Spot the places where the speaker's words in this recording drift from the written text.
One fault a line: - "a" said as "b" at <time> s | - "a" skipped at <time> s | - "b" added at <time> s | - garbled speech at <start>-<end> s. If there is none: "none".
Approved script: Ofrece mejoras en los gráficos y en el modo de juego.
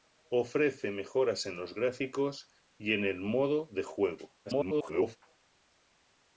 - garbled speech at 4.5-5.2 s